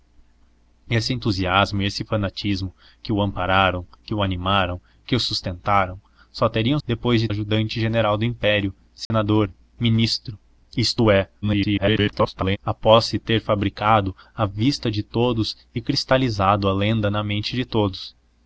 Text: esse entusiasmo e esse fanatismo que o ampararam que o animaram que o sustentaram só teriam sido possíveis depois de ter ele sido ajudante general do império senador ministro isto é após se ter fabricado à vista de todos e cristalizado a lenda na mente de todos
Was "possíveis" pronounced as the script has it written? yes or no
no